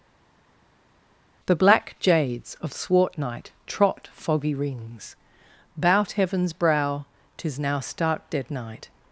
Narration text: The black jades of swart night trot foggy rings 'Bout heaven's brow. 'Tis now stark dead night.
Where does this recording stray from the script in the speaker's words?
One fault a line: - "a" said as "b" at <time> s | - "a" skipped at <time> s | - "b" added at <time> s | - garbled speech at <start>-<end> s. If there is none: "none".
none